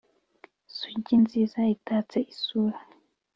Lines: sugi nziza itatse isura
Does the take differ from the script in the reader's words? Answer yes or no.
no